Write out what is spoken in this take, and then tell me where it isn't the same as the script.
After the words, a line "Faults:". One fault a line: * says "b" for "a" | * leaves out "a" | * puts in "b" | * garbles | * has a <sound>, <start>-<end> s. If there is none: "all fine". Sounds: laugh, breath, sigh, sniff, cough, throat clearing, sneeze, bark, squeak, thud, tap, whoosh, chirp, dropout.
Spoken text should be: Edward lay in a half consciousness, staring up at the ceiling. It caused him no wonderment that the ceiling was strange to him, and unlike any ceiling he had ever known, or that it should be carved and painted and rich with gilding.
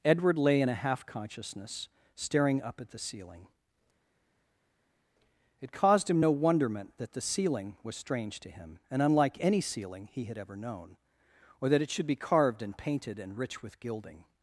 Edward lay in a half consciousness, staring up at the ceiling. It caused him no wonderment that the ceiling was strange to him, and unlike any ceiling he had ever known, or that it should be carved and painted and rich with gilding.
Faults:
all fine